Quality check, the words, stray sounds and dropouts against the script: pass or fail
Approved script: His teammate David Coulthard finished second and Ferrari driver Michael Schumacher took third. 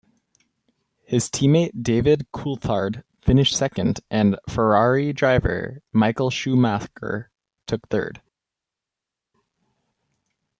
pass